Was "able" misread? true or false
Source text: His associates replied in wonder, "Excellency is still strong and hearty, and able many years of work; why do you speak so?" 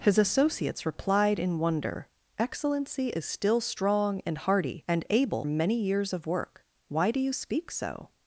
false